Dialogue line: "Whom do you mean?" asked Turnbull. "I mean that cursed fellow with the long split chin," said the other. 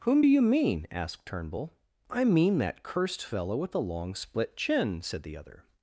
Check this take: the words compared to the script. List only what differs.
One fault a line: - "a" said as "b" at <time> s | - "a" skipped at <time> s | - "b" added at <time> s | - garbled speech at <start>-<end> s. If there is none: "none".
none